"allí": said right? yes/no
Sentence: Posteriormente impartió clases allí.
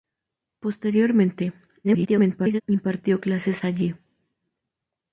yes